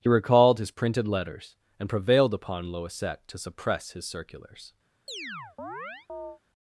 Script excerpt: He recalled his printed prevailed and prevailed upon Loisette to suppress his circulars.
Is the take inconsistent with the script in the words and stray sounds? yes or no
yes